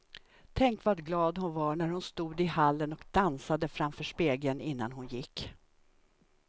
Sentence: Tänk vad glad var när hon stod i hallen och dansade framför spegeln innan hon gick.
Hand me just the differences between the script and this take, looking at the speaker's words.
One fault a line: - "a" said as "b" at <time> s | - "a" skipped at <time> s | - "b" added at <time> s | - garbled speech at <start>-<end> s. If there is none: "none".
- "hon" added at 1.4 s